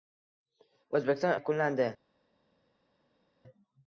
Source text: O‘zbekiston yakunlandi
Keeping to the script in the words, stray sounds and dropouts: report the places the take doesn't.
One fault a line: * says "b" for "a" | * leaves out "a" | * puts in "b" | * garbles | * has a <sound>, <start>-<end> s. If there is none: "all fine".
all fine